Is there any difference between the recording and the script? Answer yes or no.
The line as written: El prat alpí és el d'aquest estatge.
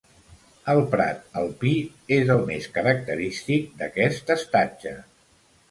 yes